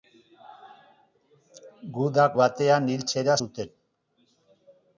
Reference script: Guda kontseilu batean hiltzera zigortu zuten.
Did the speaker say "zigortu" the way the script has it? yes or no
no